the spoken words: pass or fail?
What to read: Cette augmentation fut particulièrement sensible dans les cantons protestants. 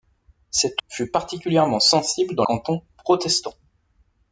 fail